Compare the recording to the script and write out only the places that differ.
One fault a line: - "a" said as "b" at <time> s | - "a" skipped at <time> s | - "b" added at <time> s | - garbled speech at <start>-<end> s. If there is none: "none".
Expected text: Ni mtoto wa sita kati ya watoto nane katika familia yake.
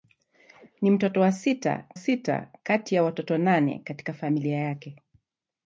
- "sita" added at 1.9 s